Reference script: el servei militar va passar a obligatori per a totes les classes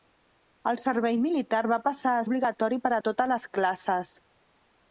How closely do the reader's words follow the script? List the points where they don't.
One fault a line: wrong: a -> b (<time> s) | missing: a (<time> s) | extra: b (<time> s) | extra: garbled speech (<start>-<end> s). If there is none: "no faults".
no faults